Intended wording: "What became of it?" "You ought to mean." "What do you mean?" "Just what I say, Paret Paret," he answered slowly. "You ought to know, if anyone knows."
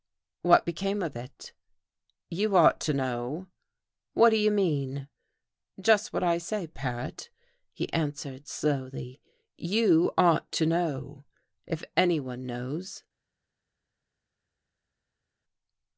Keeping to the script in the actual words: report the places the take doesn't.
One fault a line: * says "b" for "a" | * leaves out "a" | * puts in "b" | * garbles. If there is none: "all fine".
* says "know" for "mean"
* leaves out "Paret"